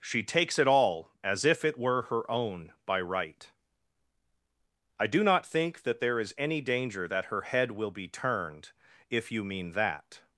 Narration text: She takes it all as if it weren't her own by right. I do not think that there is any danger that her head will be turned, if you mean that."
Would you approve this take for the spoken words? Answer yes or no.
no